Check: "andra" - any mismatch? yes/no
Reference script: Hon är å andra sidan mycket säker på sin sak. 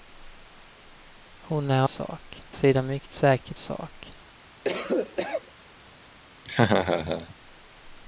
yes